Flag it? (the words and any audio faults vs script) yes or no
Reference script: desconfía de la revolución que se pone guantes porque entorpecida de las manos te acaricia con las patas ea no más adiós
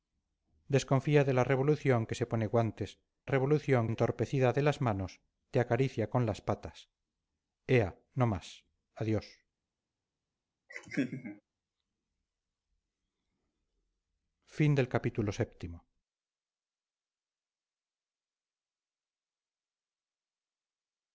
yes